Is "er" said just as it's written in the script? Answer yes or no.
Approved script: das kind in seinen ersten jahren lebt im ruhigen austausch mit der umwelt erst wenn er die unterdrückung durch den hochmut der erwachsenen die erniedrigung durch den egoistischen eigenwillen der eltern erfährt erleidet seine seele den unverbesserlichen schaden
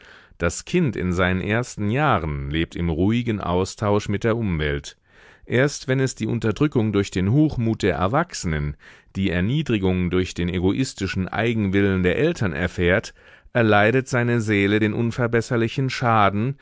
no